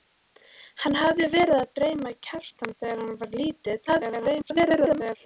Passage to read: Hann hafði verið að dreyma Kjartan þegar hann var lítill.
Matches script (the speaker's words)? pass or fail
fail